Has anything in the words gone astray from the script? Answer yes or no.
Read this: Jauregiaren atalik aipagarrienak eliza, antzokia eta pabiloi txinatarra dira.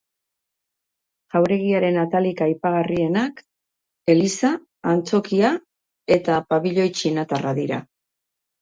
no